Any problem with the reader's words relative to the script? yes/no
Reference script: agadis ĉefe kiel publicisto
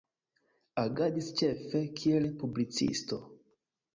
no